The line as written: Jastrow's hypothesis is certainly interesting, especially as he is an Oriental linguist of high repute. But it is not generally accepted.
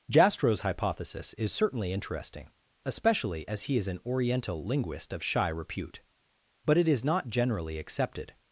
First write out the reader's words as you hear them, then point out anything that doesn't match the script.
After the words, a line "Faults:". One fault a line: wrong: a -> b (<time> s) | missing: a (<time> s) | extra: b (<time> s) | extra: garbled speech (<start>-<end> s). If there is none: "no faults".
Jastrow's hypothesis is certainly interesting, especially as he is an Oriental linguist of shy repute. But it is not generally accepted.
Faults:
wrong: high -> shy (5.2 s)